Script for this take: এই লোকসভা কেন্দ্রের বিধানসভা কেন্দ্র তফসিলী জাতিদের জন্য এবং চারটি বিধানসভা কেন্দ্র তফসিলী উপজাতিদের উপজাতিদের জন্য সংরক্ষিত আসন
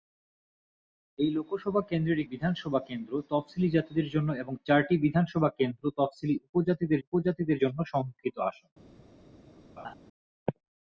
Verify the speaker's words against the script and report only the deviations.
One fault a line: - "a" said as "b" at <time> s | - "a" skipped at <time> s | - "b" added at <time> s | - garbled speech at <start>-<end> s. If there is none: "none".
none